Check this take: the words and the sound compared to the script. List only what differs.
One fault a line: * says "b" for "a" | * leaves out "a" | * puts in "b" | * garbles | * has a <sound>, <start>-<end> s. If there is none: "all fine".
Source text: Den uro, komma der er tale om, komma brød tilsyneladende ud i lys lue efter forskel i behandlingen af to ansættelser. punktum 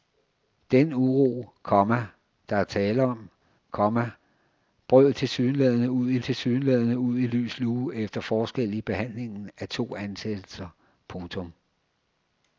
* puts in "tilsyneladende ud i"